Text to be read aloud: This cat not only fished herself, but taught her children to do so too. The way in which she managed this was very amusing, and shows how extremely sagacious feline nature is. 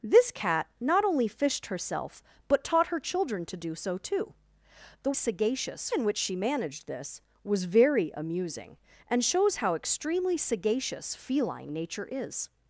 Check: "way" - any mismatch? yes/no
yes